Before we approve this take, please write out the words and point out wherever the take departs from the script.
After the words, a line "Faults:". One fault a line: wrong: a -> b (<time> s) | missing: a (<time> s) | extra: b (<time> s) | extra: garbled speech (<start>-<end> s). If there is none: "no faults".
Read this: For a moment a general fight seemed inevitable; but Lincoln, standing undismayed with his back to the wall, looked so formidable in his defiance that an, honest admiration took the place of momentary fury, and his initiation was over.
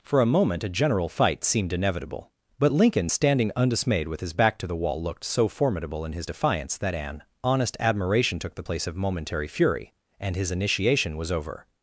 For a moment a general fight seemed inevitable; but Lincoln, standing undismayed with his back to the wall, looked so formidable in his defiance that an, honest admiration took the place of momentary fury, and his initiation was over.
Faults:
no faults